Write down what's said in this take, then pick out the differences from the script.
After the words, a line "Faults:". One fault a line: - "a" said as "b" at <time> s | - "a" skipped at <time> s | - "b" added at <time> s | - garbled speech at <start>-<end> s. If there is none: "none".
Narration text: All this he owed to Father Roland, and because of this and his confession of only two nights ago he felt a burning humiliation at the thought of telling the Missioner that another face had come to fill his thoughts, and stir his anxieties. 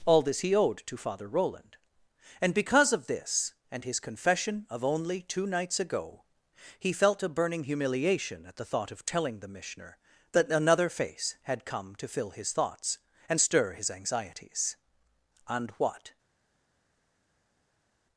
All this he owed to Father Roland, and because of this and his confession of only two nights ago he felt a burning humiliation at the thought of telling the Missioner that another face had come to fill his thoughts, and stir his anxieties. And what
Faults:
- "And what" added at 15.5 s